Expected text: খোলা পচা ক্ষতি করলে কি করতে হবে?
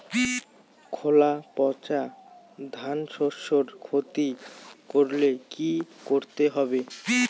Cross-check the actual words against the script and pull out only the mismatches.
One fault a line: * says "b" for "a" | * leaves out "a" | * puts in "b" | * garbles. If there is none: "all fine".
* puts in "ধানশস্যের"